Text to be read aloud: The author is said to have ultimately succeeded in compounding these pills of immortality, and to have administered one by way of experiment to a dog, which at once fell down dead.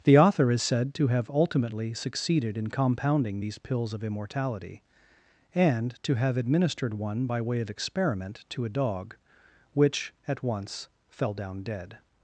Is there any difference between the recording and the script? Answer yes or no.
no